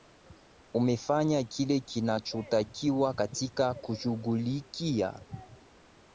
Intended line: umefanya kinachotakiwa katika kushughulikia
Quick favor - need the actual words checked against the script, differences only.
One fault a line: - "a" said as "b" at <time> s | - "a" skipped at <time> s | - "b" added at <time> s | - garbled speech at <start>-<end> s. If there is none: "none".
- "kile" added at 1.4 s